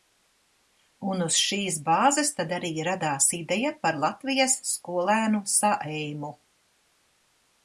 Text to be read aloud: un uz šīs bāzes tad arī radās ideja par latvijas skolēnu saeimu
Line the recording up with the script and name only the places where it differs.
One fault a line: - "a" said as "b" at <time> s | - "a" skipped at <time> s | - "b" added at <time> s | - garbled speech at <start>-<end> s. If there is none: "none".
none